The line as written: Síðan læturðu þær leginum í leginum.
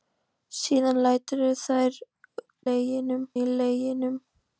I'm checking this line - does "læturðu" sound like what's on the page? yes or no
yes